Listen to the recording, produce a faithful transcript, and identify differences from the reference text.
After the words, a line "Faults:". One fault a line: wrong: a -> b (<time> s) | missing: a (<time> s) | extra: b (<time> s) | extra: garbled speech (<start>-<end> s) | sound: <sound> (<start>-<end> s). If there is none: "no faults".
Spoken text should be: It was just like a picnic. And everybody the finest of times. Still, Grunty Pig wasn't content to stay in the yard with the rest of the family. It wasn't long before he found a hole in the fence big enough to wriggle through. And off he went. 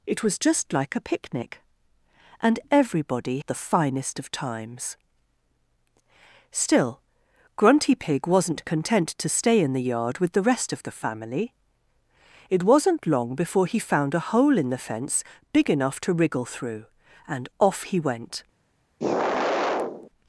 It was just like a picnic. And everybody the finest of times. Still, Grunty Pig wasn't content to stay in the yard with the rest of the family. It wasn't long before he found a hole in the fence big enough to wriggle through. And off he went.
Faults:
sound: sigh (19.0-20.1 s)